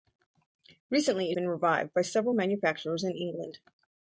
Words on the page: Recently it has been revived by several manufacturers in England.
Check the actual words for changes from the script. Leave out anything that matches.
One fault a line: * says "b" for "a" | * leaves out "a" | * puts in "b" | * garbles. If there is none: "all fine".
* leaves out "has"